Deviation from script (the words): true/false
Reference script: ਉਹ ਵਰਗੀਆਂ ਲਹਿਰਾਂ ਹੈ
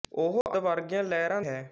false